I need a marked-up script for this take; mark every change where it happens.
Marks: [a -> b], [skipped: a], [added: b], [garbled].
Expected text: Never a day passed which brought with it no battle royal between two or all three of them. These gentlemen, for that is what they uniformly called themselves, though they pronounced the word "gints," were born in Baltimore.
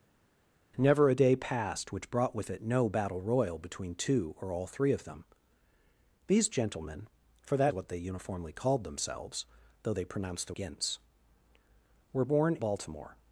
Never a day passed which brought with it no battle royal between two or all three of them. These gentlemen, for that [skipped: is] what they uniformly called themselves, though they pronounced the [skipped: word] "gints," were born [skipped: in] Baltimore.